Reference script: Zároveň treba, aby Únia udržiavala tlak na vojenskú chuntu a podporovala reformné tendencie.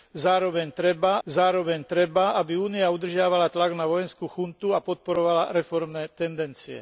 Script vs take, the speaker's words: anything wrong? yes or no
yes